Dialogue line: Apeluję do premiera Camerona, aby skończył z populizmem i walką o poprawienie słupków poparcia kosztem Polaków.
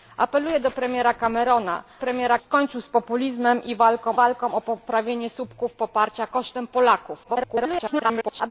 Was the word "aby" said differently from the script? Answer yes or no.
yes